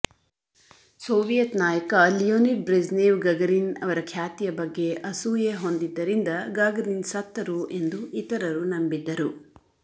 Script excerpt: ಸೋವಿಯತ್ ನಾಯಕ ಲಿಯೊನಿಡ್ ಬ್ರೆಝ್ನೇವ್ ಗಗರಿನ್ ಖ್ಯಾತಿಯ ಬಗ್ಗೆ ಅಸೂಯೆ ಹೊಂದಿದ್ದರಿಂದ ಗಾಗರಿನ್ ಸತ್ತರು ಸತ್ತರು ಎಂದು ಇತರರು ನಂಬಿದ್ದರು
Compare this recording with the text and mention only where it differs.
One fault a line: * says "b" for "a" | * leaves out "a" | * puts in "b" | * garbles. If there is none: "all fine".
* puts in "ಅವರ"
* leaves out "ಸತ್ತರು"